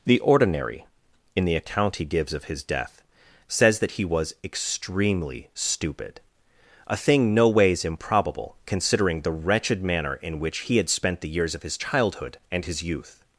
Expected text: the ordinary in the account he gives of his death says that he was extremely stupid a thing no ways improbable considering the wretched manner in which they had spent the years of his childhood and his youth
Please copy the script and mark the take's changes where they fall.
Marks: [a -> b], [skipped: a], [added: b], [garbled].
the ordinary in the account he gives of his death says that he was extremely stupid a thing no ways improbable considering the wretched manner in which [they -> he] had spent the years of his childhood and his youth